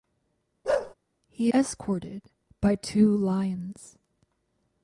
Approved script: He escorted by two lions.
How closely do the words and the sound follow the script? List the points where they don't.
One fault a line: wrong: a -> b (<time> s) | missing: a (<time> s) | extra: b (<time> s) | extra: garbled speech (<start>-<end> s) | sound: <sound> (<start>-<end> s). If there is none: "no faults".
sound: bark (0.6-0.9 s)